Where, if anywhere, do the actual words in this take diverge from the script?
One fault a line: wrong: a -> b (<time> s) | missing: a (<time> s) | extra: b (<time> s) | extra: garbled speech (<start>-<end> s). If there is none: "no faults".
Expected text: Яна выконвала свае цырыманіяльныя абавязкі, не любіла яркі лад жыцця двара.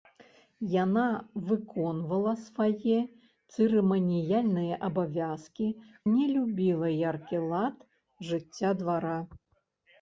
no faults